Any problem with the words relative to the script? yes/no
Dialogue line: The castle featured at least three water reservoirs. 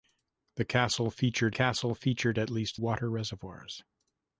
yes